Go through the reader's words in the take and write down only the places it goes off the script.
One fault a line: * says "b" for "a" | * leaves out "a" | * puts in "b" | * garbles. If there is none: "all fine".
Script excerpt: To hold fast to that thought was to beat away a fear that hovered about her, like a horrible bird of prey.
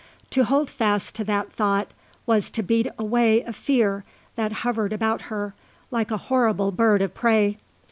all fine